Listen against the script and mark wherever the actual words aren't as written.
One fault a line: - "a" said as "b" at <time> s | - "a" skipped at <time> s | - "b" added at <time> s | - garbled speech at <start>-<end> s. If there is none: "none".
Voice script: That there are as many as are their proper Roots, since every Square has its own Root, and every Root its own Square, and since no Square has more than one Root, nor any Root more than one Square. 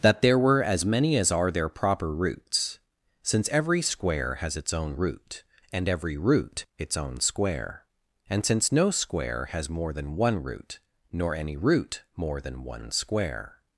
- "are" said as "were" at 0.4 s